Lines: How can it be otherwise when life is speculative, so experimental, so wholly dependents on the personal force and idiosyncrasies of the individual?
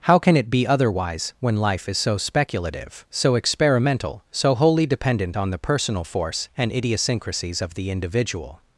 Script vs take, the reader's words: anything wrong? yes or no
yes